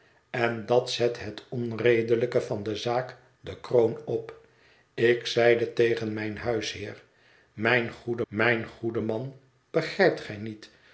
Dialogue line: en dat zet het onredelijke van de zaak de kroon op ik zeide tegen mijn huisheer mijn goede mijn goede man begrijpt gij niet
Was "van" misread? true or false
false